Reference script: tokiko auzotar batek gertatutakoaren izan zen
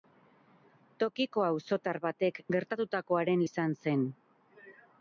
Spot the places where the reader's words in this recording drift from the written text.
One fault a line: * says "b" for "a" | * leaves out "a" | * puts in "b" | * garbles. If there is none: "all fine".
all fine